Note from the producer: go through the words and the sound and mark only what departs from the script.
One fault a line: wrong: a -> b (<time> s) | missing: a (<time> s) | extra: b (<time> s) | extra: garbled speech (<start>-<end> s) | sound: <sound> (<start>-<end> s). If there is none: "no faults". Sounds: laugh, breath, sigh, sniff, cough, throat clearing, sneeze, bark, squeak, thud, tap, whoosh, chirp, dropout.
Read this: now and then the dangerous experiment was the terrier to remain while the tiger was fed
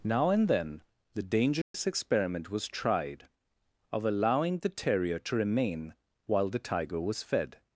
sound: dropout (1.6-1.7 s)
extra: tried of allowing (2.7 s)